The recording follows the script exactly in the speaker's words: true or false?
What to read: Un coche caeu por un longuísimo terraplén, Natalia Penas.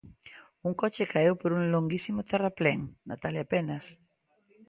true